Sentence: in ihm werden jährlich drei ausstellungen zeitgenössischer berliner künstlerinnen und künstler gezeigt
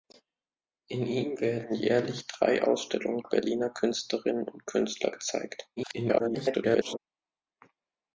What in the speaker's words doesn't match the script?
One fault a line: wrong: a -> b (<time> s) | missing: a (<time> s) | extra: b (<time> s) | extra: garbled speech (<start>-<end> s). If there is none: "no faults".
missing: zeitgenössischer (3.3 s)
extra: garbled speech (5.8-7.0 s)